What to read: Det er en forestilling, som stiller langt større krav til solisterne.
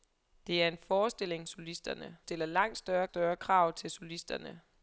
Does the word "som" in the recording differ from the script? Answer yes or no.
yes